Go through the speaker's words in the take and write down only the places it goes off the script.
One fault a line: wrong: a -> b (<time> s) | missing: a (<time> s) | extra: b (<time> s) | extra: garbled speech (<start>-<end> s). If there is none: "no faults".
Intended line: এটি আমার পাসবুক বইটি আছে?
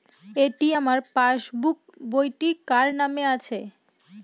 extra: কার নামে (2.7 s)